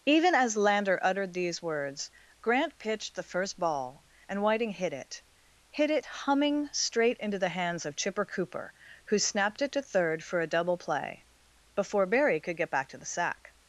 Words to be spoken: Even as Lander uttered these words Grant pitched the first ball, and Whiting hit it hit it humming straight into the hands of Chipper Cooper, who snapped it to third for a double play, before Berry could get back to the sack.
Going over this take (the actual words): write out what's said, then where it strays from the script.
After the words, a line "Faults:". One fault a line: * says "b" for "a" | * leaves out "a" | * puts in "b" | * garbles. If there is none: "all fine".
Even as Lander uttered these words Grant pitched the first ball, and Whiting hit it hit it humming straight into the hands of Chipper Cooper, who snapped it to third for a double play, before Berry could get back to the sack.
Faults:
all fine